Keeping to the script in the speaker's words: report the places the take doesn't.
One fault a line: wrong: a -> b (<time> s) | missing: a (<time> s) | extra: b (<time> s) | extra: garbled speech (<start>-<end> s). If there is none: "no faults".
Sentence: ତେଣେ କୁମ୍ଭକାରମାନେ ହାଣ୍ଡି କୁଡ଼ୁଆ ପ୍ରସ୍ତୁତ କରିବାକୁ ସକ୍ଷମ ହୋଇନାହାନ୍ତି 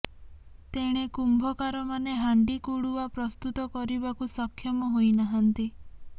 no faults